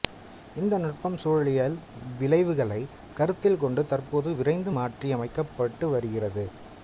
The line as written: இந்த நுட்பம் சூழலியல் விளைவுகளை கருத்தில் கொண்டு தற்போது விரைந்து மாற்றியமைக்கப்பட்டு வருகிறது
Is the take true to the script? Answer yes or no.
yes